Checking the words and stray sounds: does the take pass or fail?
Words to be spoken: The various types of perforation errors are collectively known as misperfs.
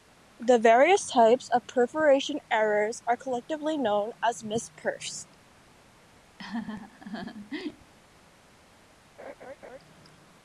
fail